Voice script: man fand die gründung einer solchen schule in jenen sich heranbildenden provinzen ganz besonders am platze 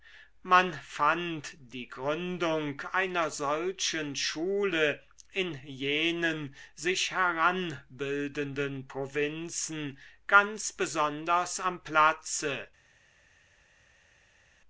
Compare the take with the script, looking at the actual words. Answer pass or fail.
pass